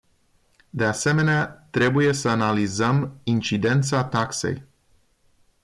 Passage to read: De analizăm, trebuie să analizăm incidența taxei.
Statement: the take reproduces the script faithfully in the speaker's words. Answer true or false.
false